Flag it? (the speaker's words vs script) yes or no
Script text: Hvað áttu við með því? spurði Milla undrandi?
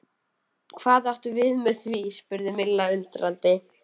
no